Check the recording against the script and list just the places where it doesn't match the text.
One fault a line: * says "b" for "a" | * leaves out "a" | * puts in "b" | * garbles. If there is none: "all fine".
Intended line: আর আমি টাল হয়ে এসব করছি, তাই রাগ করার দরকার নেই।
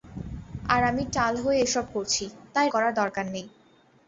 * leaves out "রাগ"